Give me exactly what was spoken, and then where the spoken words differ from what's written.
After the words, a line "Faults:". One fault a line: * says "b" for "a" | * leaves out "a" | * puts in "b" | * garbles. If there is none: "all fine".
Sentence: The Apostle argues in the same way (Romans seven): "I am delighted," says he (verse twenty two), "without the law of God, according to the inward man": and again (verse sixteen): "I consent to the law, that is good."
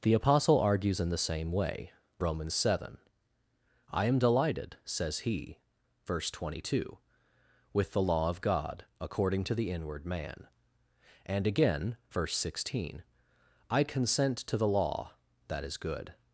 The Apostle argues in the same way (Romans seven): "I am delighted," says he (verse twenty two), "with the law of God, according to the inward man": and again (verse sixteen): "I consent to the law, that is good."
Faults:
* says "with" for "without"